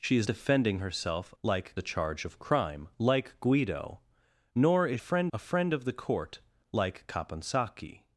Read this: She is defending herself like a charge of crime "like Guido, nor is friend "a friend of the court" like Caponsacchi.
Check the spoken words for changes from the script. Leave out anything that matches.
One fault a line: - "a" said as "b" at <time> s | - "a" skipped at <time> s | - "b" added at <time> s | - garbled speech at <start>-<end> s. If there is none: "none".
none